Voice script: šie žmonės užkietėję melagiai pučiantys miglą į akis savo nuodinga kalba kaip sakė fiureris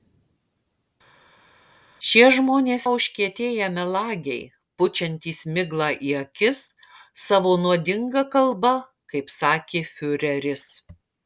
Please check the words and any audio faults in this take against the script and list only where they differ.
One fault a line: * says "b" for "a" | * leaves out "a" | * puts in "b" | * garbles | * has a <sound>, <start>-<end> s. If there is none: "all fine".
all fine